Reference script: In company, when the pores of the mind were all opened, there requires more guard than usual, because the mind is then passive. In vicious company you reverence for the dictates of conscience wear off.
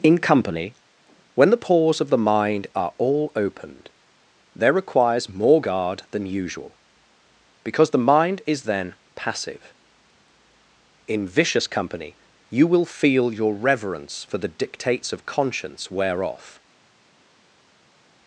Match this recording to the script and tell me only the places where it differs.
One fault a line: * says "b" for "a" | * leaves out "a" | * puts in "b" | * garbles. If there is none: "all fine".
* says "are" for "were"
* puts in "will feel your"